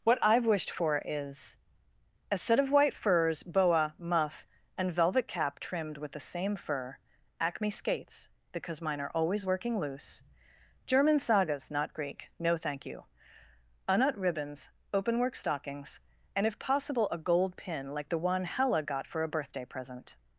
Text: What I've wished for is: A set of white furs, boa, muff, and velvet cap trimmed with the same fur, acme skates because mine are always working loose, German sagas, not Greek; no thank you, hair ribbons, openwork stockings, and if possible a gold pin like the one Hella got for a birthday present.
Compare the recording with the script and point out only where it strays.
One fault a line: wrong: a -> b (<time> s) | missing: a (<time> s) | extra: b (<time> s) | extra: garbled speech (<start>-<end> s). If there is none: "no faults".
wrong: hair -> unut (13.9 s)